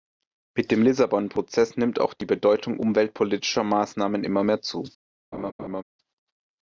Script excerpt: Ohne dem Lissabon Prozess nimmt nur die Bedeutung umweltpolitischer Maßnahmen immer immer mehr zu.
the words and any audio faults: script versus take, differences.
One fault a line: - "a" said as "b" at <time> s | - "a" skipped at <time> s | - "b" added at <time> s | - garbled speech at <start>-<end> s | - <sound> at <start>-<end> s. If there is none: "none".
- "Ohne" said as "Mit" at 0.6 s
- "nur" said as "auch" at 2.0 s
- "immer" skipped at 4.4 s
- laugh at 5.3-5.8 s